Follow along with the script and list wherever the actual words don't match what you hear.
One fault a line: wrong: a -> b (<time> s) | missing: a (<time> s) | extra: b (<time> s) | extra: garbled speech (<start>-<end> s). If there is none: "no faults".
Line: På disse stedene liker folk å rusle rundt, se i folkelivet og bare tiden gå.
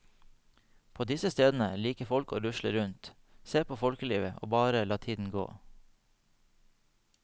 wrong: i -> på (3.6 s)
extra: la (4.8 s)